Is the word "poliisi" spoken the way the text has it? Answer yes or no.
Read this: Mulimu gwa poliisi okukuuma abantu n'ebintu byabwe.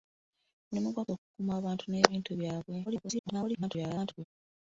no